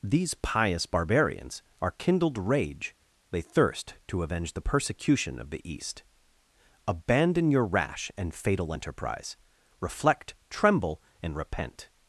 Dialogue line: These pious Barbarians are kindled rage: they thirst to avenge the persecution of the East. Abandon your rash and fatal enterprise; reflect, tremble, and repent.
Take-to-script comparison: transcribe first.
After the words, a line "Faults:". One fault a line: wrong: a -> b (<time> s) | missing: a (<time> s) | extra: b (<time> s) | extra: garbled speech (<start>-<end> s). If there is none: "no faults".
These pious Barbarians are kindled rage: they thirst to avenge the persecution of the East. Abandon your rash and fatal enterprise; reflect, tremble, and repent.
Faults:
no faults